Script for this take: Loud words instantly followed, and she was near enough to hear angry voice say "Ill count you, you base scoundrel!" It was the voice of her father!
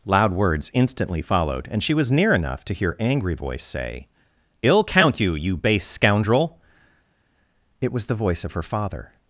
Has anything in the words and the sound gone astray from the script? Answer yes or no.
no